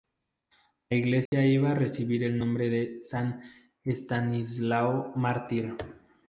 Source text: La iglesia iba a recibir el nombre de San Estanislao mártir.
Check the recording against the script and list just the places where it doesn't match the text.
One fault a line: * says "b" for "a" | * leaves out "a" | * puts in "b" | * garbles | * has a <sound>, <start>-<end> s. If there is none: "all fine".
* has a dropout, 1.3-1.3 s